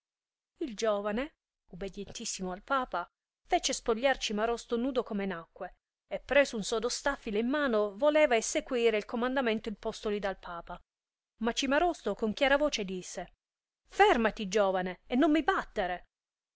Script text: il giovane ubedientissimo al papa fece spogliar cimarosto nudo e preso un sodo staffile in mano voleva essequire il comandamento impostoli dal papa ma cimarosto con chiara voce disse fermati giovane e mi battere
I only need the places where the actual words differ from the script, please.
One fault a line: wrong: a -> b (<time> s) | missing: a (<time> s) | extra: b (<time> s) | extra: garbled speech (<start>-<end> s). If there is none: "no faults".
extra: come nacque (5.0 s)
extra: non (15.2 s)